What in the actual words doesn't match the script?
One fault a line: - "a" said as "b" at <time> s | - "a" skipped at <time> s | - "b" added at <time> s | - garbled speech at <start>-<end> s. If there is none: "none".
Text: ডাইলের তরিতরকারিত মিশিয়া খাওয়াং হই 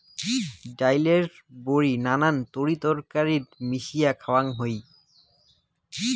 - "বড়ি নানান" added at 1.6 s